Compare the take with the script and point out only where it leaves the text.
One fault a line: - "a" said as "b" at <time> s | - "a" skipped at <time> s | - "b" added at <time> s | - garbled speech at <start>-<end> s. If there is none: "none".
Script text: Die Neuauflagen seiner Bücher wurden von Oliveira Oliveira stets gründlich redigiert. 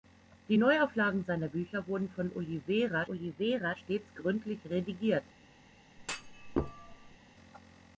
none